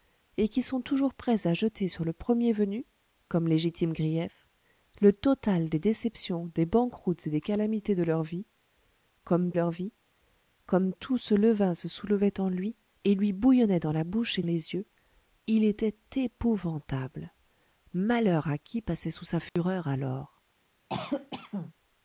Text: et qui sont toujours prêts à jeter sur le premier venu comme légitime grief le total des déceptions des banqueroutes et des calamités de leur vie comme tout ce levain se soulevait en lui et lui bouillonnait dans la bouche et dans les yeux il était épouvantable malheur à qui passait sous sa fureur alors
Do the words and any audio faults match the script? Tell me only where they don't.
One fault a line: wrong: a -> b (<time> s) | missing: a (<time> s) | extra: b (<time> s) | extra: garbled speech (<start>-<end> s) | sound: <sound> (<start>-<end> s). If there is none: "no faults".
extra: leur vie comme (9.5 s)
missing: dans (14.4 s)
sound: dropout (19.5-19.6 s)
sound: cough (20.9-21.7 s)